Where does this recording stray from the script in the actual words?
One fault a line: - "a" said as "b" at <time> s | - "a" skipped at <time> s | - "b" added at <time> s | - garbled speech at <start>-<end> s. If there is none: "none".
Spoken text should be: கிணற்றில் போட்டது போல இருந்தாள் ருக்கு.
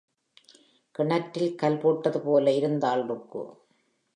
- "கல்" added at 1.6 s